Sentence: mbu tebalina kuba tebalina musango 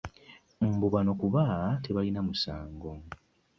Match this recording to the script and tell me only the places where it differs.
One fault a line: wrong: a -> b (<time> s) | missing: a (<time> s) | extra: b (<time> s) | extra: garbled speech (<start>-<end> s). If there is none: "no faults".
wrong: tebalina -> bano (0.9 s)